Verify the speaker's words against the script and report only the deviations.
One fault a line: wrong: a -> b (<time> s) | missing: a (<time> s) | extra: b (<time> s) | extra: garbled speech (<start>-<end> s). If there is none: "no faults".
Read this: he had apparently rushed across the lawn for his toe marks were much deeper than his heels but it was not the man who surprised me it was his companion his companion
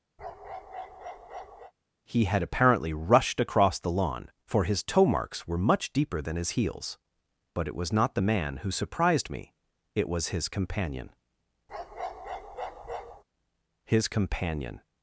no faults